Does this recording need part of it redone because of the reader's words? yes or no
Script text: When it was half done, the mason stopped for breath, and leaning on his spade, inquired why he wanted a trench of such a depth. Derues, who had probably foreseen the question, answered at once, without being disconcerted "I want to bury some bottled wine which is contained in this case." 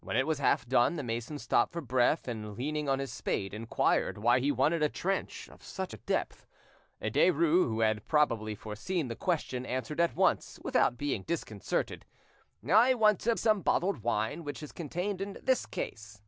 yes